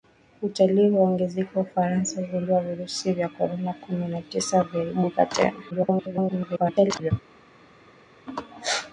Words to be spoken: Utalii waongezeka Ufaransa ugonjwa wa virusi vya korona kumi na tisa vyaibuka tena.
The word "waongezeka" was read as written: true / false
true